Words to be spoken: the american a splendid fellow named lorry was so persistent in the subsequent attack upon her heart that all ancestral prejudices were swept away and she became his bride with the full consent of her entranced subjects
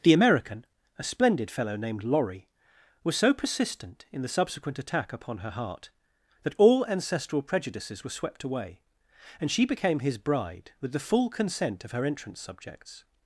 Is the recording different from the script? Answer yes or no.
yes